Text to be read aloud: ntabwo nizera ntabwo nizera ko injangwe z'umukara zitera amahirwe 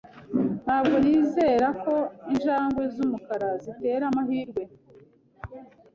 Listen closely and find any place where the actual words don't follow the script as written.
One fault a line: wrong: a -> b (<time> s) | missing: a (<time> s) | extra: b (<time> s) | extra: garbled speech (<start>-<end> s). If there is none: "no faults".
missing: ntabwo nizera (1.7 s)